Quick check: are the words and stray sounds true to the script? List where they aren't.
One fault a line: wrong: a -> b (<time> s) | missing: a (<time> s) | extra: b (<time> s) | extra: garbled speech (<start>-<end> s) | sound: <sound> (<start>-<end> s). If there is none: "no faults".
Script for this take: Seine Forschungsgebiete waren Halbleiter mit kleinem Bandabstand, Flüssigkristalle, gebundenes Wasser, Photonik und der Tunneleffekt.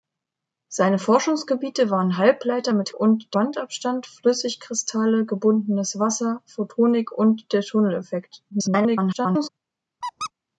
wrong: kleinem -> und (2.9 s)
extra: garbled speech (8.5-9.5 s)
sound: squeak (10.0-10.3 s)